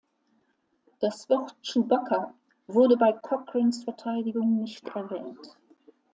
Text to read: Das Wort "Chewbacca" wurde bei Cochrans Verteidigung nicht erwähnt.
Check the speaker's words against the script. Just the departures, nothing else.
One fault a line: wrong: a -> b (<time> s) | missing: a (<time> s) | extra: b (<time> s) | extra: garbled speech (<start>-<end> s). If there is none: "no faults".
no faults